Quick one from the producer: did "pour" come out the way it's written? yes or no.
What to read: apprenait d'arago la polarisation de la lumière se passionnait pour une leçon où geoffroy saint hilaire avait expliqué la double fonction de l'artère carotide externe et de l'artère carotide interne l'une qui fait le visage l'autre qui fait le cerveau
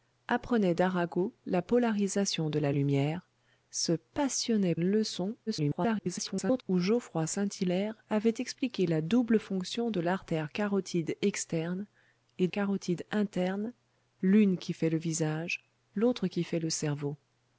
no